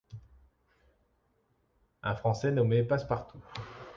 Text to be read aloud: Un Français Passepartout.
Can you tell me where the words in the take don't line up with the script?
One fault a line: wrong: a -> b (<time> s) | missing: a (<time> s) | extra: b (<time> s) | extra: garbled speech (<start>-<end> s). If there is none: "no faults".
extra: nommé (2.5 s)